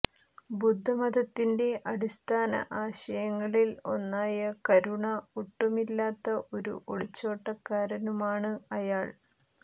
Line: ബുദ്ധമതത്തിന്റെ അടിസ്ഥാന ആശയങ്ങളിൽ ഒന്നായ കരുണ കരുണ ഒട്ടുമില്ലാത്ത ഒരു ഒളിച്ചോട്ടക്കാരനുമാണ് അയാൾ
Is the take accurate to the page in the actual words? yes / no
no